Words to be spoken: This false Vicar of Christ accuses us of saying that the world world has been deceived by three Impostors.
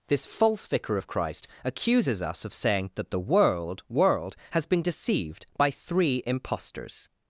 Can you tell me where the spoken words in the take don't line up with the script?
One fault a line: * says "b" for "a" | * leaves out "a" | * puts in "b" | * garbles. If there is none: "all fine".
all fine